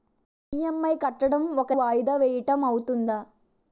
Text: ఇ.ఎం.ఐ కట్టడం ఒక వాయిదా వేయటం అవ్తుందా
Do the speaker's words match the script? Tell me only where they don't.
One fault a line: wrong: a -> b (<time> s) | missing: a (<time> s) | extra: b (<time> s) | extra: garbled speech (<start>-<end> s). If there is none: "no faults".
no faults